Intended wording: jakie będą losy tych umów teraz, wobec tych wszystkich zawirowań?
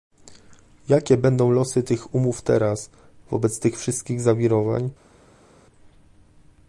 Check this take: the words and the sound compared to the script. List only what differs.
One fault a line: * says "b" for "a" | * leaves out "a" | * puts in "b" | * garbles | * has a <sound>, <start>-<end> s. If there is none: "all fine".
all fine